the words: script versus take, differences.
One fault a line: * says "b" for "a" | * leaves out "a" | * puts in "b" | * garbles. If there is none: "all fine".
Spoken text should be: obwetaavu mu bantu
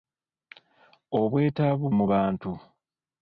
all fine